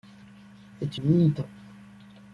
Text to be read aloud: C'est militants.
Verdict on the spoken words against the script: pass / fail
pass